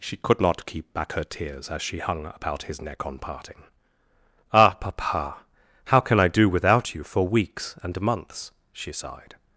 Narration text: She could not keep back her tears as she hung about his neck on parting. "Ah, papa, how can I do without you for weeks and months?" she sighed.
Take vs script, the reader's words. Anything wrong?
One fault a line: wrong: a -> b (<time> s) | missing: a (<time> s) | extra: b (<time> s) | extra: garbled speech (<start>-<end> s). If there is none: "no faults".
no faults